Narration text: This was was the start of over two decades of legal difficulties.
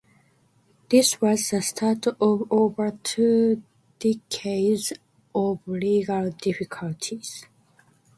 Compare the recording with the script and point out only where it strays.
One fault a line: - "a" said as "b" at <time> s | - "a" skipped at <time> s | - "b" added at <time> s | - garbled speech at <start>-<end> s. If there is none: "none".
- "was" skipped at 1.5 s